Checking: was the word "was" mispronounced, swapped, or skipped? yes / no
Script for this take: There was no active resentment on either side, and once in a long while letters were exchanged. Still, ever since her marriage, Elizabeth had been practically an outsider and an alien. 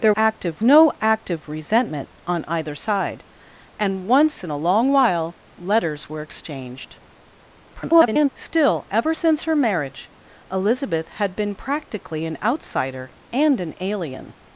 yes